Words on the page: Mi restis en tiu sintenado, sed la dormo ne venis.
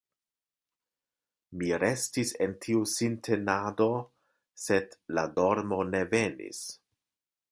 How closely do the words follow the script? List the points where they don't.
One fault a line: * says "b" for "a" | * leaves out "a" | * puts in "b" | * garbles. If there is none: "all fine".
all fine